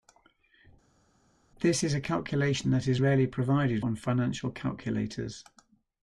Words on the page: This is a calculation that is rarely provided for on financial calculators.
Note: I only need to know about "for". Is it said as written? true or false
false